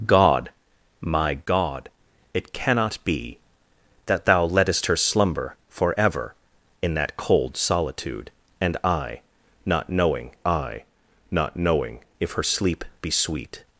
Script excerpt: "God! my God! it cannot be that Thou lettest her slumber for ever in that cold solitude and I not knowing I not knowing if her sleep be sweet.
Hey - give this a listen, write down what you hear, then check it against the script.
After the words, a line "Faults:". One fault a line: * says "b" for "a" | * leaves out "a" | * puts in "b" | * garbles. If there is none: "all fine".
"God! my God! it cannot be that Thou lettest her slumber for ever in that cold solitude and I not knowing I not knowing if her sleep be sweet.
Faults:
all fine